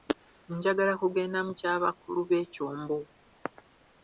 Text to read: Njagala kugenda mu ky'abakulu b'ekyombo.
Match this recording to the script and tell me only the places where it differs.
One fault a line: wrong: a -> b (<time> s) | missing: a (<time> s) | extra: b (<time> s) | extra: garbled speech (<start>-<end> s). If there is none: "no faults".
no faults